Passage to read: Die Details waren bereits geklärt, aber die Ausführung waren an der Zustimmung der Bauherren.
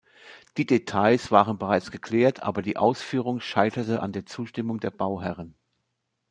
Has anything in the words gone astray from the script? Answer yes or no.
yes